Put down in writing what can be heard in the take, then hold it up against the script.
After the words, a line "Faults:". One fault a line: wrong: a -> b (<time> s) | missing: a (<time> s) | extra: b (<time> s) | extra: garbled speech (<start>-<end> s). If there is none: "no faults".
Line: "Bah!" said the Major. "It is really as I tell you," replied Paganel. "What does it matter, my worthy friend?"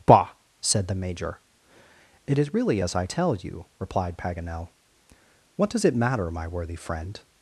"Bah!" said the Major. "It is really as I tell you," replied Paganel. "What does it matter, my worthy friend?"
Faults:
no faults